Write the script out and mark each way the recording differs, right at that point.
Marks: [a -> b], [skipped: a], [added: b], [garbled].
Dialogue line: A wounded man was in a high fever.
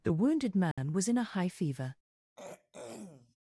[A -> The] wounded man was in a high fever.